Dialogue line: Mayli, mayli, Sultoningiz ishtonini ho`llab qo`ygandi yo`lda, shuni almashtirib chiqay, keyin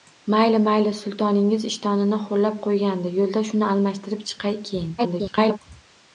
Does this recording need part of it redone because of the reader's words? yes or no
yes